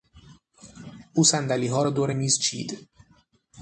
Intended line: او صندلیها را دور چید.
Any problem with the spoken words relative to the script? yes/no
yes